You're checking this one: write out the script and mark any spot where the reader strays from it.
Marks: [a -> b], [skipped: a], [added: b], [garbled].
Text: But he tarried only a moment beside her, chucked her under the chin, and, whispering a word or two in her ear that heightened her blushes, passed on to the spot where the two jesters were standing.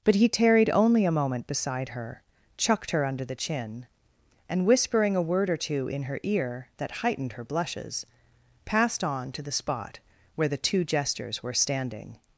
But he tarried only a moment beside her, chucked her under the chin, and, whispering a word or two in her ear that heightened her blushes, passed on to the spot where the two jesters were standing.